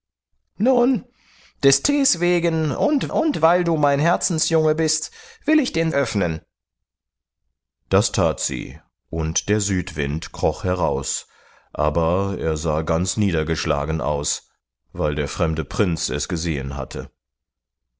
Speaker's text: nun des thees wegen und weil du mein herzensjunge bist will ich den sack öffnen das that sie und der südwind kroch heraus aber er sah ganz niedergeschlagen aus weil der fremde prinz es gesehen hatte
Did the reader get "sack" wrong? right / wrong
wrong